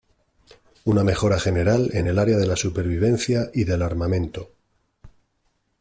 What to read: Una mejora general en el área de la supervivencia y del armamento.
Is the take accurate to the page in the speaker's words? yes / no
yes